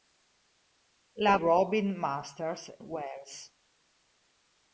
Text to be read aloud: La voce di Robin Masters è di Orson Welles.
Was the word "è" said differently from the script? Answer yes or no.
yes